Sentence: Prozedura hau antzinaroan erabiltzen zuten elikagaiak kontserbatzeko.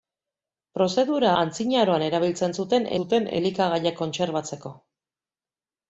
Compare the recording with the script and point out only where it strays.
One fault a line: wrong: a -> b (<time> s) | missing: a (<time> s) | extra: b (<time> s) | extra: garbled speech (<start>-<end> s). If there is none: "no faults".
missing: hau (1.3 s)
extra: zuten (3.0 s)